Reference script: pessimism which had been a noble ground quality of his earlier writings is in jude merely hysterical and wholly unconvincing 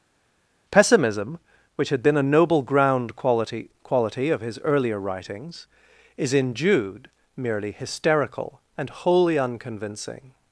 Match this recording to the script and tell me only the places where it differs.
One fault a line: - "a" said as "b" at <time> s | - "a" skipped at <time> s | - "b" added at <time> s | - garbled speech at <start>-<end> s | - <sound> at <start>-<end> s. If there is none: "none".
- "quality" added at 3.8 s